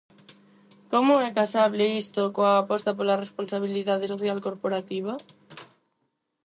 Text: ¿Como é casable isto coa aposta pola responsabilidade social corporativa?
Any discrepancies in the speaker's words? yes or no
no